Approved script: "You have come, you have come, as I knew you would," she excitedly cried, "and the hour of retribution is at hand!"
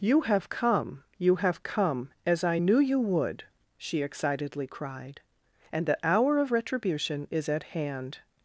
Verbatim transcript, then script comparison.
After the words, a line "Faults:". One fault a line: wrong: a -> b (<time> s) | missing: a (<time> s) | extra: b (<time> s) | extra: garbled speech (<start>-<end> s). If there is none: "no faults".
"You have come, you have come, as I knew you would," she excitedly cried, "and the hour of retribution is at hand!"
Faults:
no faults